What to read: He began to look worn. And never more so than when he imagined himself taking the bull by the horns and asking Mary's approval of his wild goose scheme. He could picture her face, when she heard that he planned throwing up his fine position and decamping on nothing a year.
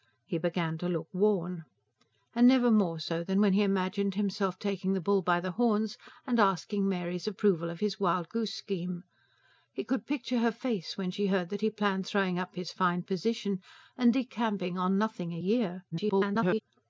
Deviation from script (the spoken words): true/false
true